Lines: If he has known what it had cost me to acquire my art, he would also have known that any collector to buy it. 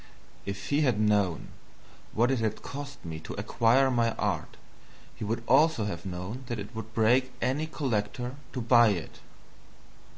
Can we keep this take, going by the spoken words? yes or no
no